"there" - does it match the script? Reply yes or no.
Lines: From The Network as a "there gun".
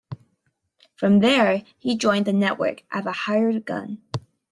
no